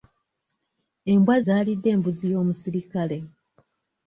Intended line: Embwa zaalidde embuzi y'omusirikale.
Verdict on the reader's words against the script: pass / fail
pass